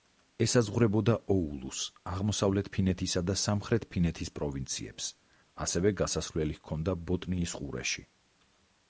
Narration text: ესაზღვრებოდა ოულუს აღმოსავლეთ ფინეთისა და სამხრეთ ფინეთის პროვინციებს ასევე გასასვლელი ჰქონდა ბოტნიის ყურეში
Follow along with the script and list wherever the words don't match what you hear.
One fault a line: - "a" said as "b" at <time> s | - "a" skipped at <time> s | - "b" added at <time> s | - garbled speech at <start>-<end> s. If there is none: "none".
none